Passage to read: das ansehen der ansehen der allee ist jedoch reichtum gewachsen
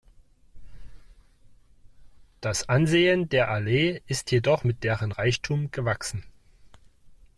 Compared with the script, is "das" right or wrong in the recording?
right